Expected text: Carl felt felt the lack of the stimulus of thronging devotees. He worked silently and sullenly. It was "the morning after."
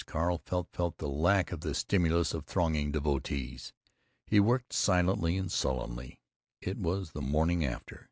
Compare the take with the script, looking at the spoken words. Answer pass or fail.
pass